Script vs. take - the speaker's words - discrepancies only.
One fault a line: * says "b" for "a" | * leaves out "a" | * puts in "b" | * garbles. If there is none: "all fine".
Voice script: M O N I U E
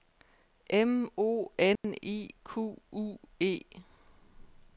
* puts in "Q"